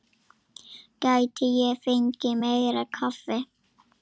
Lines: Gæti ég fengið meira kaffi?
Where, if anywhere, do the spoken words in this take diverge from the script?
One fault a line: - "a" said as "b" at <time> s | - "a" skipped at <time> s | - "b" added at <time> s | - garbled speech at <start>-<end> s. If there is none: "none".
none